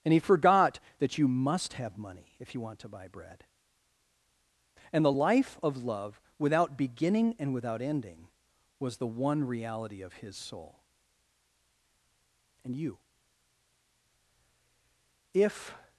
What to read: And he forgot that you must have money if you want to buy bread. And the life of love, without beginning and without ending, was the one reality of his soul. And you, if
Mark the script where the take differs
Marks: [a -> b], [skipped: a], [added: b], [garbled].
And he forgot that you must have money if you want to buy bread. And the life of love, without beginning and without ending, was the one reality of his soul. And you, if